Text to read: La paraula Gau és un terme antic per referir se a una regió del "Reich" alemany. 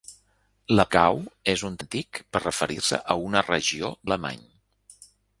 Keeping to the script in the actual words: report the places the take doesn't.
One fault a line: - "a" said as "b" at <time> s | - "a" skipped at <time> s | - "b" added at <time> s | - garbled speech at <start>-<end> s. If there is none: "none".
- "paraula" skipped at 0.8 s
- "terme" skipped at 1.8 s
- "del Reich" skipped at 3.9 s